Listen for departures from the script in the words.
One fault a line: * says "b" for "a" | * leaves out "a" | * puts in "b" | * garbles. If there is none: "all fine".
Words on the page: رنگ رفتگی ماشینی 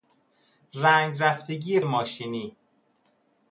all fine